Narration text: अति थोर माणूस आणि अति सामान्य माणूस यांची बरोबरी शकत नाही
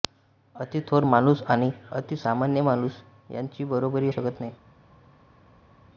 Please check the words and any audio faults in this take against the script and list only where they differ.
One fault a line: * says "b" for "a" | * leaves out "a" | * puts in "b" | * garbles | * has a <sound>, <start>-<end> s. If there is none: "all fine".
all fine